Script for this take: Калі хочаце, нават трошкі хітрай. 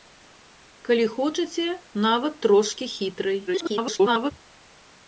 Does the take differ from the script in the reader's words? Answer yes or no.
yes